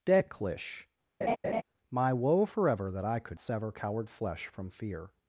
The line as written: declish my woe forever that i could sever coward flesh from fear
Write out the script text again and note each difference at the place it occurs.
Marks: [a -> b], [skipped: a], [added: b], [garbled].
declish my woe forever that i could sever coward flesh from fear